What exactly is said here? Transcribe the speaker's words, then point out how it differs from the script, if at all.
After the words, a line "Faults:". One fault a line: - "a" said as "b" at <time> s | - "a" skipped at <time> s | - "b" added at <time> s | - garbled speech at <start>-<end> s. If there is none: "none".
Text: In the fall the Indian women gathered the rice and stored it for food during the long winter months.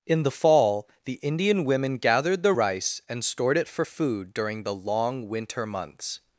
In the fall the Indian women gathered the rice and stored it for food during the long winter months.
Faults:
none